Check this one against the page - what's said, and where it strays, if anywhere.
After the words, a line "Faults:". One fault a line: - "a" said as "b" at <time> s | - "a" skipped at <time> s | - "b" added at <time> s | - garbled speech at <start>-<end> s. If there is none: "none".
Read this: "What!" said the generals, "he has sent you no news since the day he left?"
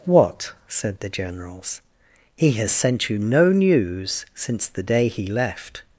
"What!" said the generals, "he has sent you no news since the day he left?"
Faults:
none